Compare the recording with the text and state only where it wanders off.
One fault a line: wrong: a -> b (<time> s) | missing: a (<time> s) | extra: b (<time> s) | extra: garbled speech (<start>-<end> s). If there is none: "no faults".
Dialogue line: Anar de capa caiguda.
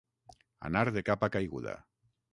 no faults